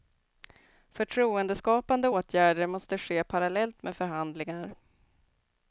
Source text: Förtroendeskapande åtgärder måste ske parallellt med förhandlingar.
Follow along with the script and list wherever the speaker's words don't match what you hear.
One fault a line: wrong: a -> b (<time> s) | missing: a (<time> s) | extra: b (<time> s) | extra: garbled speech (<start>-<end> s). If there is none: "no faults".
no faults